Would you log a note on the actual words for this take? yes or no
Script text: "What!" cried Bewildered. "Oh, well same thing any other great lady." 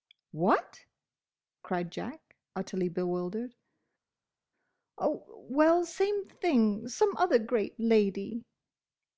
yes